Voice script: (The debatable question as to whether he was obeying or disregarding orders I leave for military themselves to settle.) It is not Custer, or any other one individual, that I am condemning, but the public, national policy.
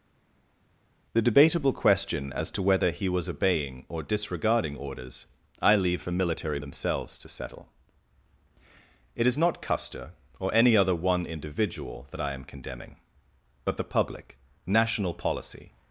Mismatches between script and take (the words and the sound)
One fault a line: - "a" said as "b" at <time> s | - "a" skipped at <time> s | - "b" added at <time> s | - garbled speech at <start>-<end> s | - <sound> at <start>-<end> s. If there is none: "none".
none